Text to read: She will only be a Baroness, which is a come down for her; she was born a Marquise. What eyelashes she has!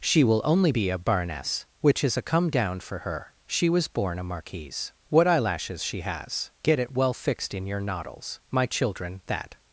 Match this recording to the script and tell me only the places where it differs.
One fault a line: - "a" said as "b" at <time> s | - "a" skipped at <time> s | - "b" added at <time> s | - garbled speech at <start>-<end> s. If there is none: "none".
- "Get it well fixed in your noddles my children that" added at 6.6 s